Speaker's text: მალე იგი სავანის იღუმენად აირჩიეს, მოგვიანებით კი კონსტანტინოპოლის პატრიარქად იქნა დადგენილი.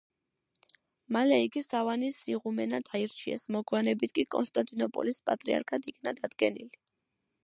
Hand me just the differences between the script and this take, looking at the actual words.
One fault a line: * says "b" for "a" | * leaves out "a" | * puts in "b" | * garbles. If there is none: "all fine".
all fine